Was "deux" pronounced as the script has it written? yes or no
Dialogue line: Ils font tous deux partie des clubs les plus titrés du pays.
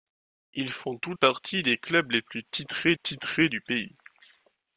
no